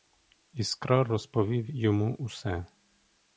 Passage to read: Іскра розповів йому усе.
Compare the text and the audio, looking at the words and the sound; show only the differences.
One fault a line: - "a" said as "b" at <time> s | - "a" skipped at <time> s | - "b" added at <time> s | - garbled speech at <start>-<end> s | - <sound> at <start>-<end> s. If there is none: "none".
none